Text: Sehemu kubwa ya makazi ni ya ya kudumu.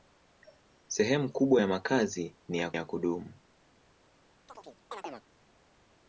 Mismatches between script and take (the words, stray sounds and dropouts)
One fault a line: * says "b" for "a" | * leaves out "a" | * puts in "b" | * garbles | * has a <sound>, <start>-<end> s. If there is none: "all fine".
* has a chirp, 4.5-5.3 s